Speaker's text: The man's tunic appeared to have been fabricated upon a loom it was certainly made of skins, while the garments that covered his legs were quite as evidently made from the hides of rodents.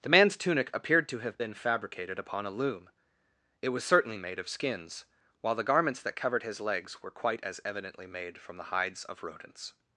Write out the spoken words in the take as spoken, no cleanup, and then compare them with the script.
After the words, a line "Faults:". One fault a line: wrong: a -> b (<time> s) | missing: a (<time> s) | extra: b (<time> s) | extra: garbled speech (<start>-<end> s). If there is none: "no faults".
The man's tunic appeared to have been fabricated upon a loom it was certainly made of skins, while the garments that covered his legs were quite as evidently made from the hides of rodents.
Faults:
no faults